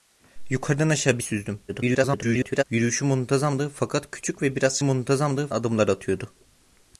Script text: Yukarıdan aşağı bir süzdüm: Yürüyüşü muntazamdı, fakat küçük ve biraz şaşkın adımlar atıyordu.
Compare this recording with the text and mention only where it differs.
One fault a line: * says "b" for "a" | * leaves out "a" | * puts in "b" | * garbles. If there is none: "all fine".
* garbles
* says "muntazamdı" for "şaşkın"